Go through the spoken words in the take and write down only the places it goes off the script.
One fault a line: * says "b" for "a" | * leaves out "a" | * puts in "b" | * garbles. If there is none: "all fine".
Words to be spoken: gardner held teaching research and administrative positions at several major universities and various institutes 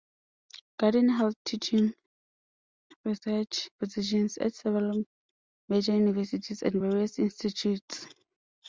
* leaves out "and administrative"